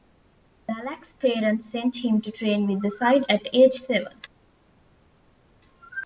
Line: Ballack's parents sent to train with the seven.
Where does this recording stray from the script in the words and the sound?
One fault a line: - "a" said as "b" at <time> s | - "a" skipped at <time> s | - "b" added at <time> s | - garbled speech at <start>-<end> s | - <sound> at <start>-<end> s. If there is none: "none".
- "him" added at 2.0 s
- "side at age" added at 2.9 s